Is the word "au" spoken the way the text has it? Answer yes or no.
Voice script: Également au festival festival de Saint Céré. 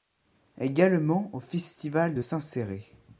yes